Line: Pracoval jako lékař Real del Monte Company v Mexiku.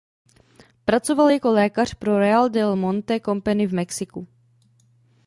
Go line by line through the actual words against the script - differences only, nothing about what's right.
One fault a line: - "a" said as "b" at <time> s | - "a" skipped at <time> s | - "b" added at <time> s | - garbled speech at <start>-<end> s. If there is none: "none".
- "pro" added at 1.9 s